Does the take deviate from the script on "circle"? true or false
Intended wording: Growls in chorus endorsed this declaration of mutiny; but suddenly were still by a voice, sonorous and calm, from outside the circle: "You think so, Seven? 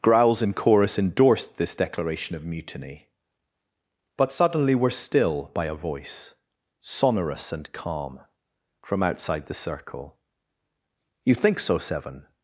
false